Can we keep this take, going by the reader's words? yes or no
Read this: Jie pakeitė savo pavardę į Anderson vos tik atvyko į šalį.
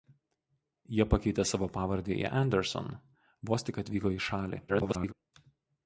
no